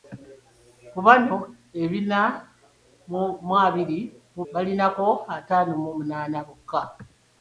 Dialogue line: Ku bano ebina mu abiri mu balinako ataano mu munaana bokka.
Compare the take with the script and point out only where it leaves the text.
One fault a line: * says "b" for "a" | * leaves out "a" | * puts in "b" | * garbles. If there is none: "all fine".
all fine